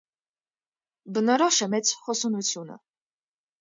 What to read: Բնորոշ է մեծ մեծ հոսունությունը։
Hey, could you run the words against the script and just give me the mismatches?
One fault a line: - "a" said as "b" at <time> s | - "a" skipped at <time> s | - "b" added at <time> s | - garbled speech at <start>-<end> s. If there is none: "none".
- "մեծ" skipped at 1.9 s